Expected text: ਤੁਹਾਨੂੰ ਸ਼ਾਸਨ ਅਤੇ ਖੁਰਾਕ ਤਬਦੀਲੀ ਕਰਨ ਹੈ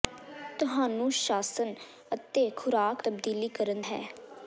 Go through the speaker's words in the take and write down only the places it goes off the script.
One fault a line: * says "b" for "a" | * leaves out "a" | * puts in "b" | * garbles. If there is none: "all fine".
all fine